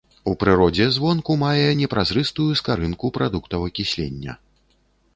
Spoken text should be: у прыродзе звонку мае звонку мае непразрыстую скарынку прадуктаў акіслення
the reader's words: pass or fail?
fail